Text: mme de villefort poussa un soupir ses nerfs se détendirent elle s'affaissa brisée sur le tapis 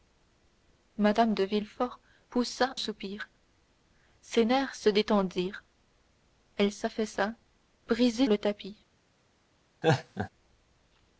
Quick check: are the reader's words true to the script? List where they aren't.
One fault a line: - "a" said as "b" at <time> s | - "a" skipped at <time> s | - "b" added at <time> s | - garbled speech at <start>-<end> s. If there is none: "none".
- "un" skipped at 2.8 s
- "sur" skipped at 8.3 s